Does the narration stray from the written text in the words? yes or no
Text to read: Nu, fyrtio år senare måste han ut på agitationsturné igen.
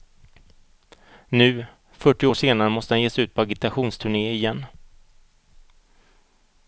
yes